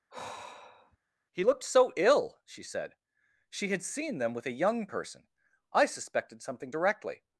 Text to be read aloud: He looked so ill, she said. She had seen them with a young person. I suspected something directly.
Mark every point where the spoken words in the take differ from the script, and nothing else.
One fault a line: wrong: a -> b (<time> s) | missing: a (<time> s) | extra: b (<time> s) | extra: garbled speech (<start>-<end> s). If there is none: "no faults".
no faults